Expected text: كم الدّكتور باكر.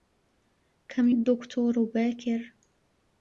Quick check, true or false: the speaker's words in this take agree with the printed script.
true